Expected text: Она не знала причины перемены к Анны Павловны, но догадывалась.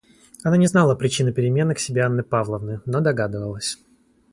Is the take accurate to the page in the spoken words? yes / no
no